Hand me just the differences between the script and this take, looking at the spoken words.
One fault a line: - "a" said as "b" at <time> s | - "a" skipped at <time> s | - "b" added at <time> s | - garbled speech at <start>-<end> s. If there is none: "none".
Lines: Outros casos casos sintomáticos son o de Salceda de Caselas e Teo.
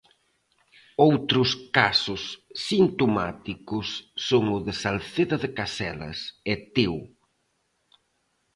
- "casos" skipped at 2.2 s